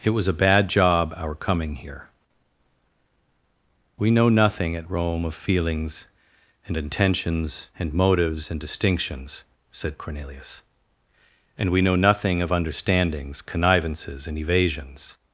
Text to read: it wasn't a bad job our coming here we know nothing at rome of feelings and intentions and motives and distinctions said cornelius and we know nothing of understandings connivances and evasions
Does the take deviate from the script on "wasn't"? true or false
true